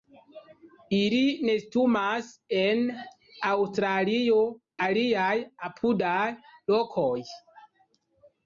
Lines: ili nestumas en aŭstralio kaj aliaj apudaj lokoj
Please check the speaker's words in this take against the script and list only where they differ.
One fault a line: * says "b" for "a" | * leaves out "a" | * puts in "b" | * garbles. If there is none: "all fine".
* leaves out "kaj"